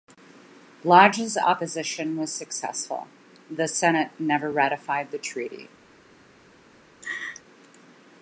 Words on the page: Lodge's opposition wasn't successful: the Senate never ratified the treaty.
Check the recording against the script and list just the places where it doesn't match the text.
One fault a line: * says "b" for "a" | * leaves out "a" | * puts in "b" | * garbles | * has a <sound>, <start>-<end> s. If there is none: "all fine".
* says "was" for "wasn't"
* has a laugh, 7.0-7.4 s